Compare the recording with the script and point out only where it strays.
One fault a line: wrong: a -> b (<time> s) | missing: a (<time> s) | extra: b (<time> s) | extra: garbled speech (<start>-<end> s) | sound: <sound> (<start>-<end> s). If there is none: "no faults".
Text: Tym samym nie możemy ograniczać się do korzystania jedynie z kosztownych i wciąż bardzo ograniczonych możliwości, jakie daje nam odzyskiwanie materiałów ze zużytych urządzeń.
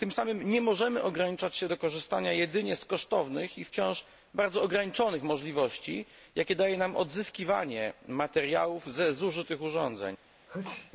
sound: sneeze (10.5-10.9 s)